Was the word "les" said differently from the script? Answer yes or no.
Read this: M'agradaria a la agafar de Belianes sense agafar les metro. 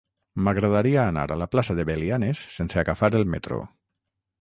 yes